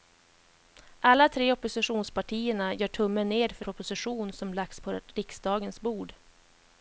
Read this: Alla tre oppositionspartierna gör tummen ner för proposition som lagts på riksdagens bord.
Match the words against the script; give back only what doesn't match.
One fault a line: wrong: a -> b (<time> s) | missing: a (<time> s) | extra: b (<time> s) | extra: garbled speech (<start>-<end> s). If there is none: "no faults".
no faults